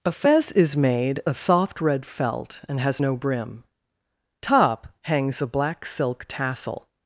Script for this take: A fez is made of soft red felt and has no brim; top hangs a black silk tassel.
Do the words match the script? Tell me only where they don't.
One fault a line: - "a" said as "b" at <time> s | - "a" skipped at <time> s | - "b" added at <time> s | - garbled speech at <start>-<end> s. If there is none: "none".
none